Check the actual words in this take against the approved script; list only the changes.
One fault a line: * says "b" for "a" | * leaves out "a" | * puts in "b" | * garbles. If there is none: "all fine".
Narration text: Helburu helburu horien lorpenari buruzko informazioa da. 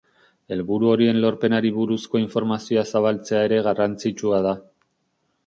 * leaves out "helburu"
* puts in "zabaltzea ere garrantzitsua"